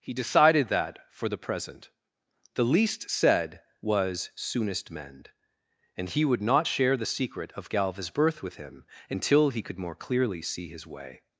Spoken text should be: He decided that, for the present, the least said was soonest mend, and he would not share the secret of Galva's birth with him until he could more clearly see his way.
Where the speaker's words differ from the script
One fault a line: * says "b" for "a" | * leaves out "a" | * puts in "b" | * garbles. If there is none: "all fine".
all fine